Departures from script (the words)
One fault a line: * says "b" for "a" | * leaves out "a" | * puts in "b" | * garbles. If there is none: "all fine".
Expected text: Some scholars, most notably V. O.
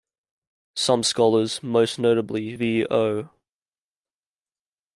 all fine